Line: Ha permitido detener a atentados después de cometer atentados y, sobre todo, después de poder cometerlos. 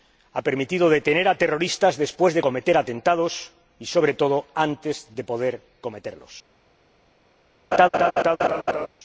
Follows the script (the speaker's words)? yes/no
no